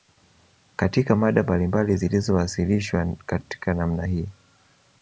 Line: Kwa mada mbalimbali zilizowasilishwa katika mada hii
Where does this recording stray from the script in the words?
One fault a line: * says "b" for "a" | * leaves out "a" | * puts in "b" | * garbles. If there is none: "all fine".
* says "Katika" for "Kwa"
* says "namna" for "mada"